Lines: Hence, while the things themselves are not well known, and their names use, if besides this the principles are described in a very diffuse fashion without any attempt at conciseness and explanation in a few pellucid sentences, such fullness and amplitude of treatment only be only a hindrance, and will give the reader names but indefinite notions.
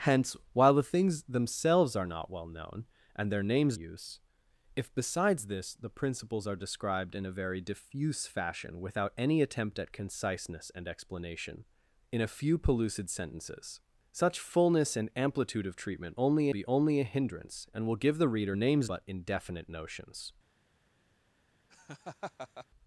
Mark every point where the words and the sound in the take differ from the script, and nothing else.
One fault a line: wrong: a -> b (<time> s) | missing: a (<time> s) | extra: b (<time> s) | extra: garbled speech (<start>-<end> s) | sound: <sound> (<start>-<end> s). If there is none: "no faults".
sound: laugh (21.7-22.7 s)